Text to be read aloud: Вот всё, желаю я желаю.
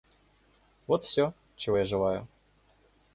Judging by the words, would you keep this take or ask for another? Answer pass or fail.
fail